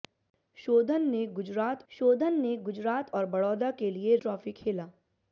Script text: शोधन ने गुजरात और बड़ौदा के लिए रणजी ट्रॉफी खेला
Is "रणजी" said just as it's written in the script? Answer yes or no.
no